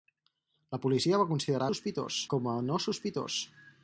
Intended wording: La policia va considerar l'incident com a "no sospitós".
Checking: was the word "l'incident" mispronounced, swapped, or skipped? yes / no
yes